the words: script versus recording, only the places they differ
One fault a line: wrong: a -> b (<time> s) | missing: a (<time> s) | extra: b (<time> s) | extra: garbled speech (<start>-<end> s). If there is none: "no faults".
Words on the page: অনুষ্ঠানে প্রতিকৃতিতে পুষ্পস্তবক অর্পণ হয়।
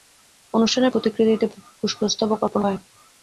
no faults